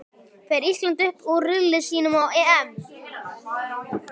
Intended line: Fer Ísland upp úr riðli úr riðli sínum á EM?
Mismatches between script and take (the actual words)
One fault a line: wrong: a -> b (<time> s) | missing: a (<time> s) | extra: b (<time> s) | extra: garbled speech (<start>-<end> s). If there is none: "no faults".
missing: úr riðli (1.8 s)